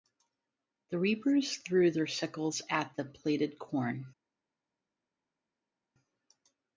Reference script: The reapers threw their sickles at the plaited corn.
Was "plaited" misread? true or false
false